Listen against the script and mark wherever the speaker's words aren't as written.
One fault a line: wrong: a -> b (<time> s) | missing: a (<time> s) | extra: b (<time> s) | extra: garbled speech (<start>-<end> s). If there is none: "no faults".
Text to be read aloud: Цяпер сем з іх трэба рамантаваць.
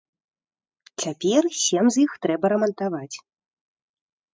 no faults